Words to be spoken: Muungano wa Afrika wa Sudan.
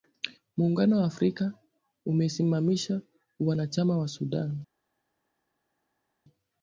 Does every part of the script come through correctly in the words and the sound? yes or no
no